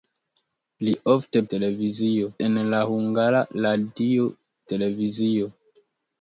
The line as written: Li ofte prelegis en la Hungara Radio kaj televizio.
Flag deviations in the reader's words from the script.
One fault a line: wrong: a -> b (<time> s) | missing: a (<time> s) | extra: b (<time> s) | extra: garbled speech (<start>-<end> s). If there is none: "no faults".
wrong: prelegis -> televizio (1.6 s)
missing: kaj (4.3 s)